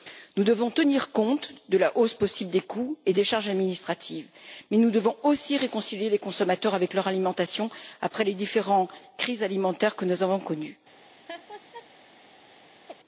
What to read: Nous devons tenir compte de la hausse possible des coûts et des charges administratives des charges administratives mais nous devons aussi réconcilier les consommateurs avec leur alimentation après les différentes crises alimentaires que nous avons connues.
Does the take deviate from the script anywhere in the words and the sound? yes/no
yes